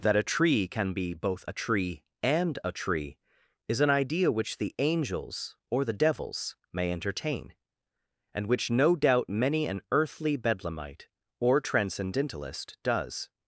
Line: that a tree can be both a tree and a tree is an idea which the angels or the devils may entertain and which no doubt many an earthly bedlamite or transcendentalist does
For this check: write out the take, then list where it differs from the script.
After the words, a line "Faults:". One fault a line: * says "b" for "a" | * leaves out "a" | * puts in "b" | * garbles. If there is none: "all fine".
that a tree can be both a tree and a tree is an idea which the angels or the devils may entertain and which no doubt many an earthly bedlamite or transcendentalist does
Faults:
all fine